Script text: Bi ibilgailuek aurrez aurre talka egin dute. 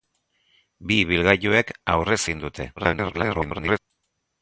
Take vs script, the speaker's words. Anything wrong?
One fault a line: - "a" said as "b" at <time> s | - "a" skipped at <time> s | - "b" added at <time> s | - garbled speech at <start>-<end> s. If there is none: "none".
- "aurre talka" skipped at 2.2 s
- garbled speech at 2.8-3.8 s